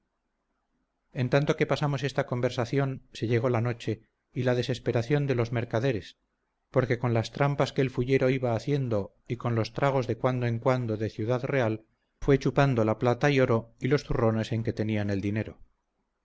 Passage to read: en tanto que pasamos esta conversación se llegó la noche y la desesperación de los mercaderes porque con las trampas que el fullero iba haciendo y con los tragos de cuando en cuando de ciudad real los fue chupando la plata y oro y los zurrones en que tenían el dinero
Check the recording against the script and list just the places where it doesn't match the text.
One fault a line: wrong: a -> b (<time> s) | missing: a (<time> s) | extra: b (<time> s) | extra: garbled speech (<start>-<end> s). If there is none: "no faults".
missing: los (11.8 s)